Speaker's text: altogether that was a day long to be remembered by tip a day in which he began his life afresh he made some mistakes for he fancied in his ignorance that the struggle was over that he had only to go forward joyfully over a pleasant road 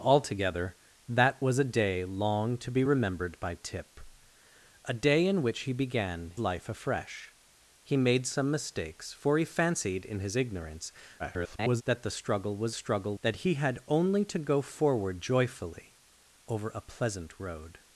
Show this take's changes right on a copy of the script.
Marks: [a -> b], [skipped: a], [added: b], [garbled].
altogether that was a day long to be remembered by tip a day in which he began [skipped: his] life afresh he made some mistakes for he fancied in his ignorance [garbled] that the struggle was [over -> struggle] that he had only to go forward joyfully over a pleasant road